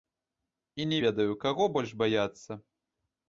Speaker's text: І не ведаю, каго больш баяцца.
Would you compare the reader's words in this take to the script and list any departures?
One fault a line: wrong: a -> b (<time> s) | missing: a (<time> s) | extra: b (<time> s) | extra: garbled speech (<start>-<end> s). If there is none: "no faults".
no faults